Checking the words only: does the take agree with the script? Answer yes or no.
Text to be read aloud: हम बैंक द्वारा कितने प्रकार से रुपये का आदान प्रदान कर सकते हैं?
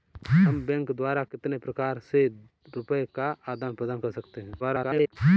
no